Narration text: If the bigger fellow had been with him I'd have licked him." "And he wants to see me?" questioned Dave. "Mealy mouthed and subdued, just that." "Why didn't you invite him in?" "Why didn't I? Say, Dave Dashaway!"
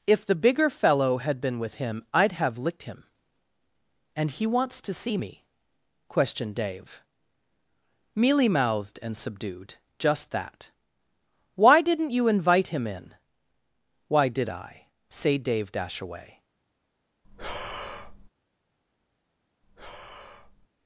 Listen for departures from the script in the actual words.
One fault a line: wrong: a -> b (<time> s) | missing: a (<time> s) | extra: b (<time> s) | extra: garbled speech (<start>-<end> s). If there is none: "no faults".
wrong: didn't -> did (14.3 s)